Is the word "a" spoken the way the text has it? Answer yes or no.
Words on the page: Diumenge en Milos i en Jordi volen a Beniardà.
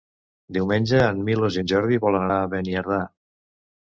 yes